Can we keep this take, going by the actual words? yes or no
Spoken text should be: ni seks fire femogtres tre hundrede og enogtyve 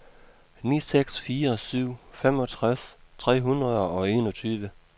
no